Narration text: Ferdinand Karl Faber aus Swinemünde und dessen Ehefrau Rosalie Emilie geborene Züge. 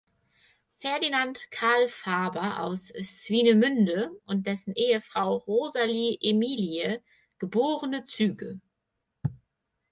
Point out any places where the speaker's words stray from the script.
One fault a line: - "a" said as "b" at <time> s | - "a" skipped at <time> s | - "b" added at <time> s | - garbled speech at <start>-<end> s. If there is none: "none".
none